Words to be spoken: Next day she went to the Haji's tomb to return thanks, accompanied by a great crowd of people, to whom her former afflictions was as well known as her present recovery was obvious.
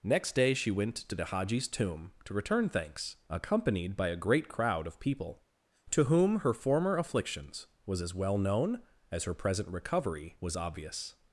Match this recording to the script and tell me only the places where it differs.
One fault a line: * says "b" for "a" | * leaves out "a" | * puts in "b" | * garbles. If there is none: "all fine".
all fine